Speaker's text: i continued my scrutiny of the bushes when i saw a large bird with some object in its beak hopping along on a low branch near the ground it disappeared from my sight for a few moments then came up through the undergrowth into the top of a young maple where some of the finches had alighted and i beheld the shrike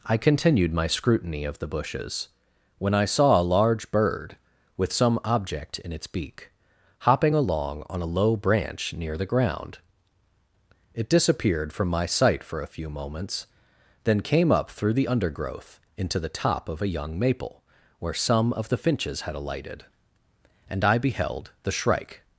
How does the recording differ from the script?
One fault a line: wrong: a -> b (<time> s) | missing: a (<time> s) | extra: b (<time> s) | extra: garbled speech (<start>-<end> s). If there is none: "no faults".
no faults